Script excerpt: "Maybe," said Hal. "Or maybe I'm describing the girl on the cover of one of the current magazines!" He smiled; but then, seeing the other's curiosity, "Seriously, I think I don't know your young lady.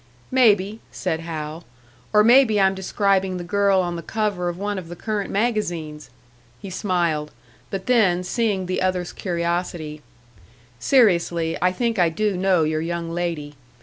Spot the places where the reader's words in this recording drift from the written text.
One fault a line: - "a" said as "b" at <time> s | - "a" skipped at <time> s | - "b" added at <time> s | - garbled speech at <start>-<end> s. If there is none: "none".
- "don't" said as "do" at 12.1 s